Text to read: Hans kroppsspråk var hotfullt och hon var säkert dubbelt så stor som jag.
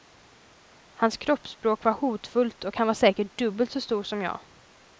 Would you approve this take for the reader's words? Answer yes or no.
no